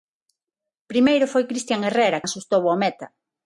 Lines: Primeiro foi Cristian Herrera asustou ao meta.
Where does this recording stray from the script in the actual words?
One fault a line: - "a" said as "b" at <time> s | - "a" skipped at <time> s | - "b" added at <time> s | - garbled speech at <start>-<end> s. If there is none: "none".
none